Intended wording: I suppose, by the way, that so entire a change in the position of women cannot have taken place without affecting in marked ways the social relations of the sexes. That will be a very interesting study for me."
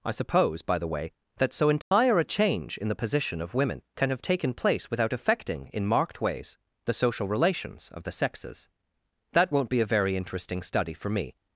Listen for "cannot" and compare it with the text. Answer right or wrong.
wrong